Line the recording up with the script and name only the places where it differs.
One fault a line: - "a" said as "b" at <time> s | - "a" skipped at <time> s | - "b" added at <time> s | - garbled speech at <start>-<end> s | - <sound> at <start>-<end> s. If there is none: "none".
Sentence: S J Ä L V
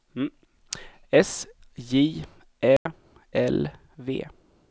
- dropout at 2.8-2.9 s